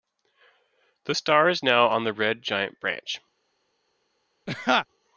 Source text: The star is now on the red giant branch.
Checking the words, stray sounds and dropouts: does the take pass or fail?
fail